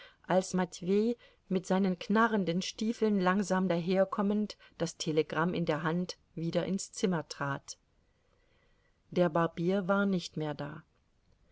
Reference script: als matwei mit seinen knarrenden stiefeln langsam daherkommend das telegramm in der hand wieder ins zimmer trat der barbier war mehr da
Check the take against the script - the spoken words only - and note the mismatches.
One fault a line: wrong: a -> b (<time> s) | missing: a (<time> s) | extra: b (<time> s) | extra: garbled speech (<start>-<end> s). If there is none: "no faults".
extra: nicht (10.0 s)